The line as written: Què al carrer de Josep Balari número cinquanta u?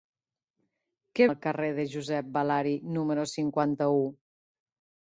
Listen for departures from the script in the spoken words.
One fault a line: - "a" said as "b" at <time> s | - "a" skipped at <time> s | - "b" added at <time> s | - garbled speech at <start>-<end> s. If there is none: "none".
none